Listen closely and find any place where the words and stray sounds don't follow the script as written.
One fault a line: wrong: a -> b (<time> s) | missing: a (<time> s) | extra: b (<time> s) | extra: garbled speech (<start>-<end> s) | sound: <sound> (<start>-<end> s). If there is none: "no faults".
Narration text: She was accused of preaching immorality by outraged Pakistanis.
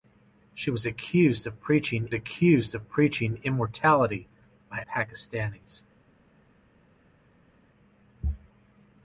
extra: accused of preaching (2.1 s)
missing: outraged (4.8 s)